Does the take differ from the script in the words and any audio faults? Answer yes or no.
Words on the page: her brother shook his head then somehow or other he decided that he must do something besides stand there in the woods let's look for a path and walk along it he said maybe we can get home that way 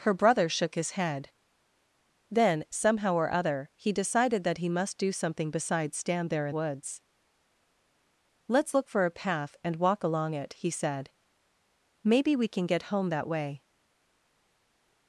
yes